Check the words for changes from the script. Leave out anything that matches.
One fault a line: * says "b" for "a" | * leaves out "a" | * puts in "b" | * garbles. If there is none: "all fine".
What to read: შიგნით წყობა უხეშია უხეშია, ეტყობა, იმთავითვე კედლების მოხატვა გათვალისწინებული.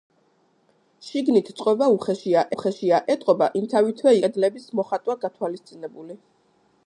all fine